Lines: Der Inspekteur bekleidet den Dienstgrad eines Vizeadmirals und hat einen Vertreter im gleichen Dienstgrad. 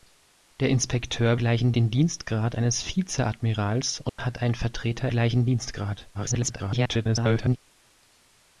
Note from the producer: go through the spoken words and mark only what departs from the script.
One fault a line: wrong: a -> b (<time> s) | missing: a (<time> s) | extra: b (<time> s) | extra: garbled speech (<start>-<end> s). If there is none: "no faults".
wrong: bekleidet -> gleichen (1.4 s)
missing: im (5.1 s)
extra: garbled speech (6.1-7.6 s)